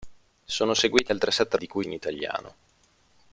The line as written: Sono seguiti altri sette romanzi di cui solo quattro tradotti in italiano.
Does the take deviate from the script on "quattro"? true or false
true